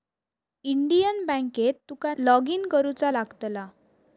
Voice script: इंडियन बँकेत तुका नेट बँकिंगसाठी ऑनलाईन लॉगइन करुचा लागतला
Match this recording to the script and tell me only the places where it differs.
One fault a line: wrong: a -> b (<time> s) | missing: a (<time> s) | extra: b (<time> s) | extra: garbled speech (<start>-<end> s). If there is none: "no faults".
missing: नेट बँकिंगसाठी ऑनलाईन (2.1 s)